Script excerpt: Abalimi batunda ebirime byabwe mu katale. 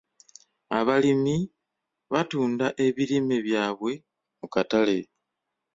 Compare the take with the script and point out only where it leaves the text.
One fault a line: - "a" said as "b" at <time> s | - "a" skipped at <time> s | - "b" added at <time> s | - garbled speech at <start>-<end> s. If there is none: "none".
none